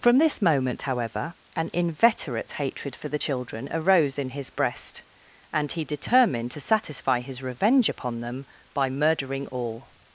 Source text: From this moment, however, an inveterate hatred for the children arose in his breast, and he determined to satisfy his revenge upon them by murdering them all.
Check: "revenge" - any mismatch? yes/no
no